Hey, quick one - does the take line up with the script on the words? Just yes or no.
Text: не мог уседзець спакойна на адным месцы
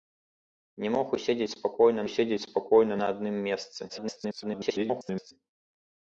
no